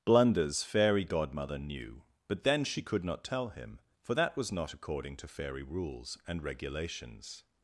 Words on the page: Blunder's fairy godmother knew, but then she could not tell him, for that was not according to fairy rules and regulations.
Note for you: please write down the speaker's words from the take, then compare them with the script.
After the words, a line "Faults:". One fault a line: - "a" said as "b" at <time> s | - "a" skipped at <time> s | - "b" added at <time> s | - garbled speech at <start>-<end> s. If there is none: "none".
Blunder's fairy godmother knew, but then she could not tell him, for that was not according to fairy rules and regulations.
Faults:
none